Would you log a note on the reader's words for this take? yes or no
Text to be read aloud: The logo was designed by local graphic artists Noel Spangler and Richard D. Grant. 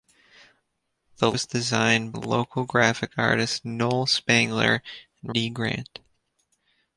yes